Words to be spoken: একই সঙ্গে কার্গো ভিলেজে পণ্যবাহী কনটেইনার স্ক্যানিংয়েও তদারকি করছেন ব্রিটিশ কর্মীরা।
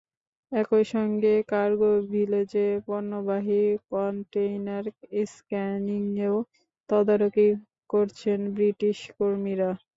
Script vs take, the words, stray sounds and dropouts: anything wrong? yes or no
no